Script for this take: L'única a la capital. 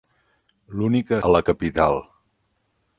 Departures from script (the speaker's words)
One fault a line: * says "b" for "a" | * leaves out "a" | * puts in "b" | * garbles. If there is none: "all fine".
all fine